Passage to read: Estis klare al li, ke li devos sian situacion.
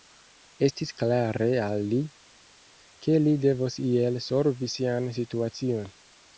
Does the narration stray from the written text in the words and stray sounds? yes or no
yes